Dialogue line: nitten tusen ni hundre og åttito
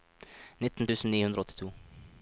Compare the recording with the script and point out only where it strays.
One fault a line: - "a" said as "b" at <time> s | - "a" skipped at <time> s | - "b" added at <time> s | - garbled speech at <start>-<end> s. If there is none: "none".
none